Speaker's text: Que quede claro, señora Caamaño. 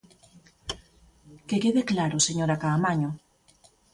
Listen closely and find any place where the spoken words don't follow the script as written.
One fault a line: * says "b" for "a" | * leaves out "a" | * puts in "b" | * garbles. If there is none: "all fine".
all fine